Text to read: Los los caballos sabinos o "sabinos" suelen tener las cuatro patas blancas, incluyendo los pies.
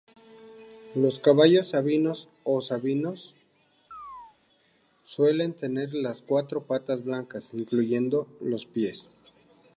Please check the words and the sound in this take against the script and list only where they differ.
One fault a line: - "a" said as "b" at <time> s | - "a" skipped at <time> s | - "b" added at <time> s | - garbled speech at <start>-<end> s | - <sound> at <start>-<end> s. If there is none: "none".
- "los" skipped at 1.2 s
- chirp at 3.9-4.4 s